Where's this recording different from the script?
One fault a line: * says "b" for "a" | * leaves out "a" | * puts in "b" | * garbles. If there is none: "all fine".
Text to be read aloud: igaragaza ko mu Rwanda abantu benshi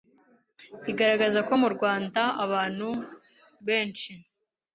all fine